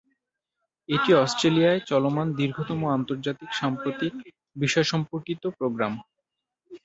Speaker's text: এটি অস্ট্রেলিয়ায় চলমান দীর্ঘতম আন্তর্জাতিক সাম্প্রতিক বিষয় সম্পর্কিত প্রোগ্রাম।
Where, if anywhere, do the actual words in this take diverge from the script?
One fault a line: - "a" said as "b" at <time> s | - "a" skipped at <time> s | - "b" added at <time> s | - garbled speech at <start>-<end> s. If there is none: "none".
none